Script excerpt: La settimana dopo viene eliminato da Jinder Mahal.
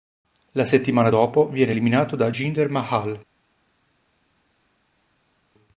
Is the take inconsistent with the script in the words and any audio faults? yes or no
no